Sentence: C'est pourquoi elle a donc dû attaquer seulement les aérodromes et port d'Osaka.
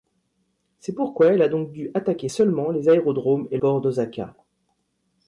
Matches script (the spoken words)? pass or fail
pass